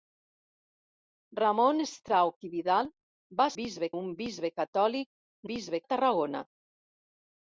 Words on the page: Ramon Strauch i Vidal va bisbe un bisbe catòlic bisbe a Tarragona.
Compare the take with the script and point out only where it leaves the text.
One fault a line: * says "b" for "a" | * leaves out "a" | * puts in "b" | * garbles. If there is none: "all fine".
all fine